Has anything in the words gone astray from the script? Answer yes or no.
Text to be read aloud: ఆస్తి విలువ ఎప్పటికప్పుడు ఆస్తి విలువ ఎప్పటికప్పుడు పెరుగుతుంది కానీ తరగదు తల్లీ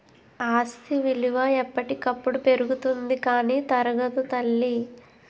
yes